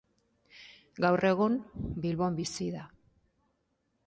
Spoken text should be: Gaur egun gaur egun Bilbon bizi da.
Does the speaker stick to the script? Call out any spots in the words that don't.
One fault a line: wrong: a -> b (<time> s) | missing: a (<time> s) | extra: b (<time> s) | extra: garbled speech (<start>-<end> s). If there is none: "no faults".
missing: gaur egun (1.6 s)